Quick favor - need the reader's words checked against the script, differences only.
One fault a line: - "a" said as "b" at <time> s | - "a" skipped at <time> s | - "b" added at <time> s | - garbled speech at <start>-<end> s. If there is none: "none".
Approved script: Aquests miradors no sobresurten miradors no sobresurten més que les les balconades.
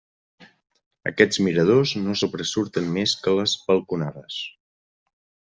- "miradors no sobresurten" skipped at 2.9 s
- "les" skipped at 3.6 s